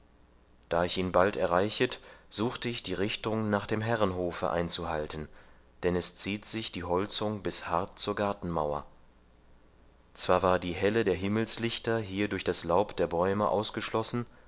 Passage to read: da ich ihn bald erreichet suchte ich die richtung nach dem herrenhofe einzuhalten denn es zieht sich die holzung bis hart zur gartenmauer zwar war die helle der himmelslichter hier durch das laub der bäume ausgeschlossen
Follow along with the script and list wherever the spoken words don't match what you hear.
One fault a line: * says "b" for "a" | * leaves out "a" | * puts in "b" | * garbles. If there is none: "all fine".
all fine